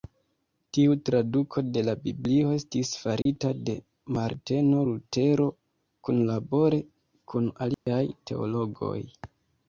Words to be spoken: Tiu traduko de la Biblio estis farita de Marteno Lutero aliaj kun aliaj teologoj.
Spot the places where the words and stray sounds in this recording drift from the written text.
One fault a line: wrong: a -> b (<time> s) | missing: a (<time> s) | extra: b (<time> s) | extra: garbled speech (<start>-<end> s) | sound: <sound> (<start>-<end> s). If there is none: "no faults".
sound: dropout (3.2-3.3 s)
wrong: aliaj -> kunlabore (6.1 s)
sound: dropout (7.7-7.9 s)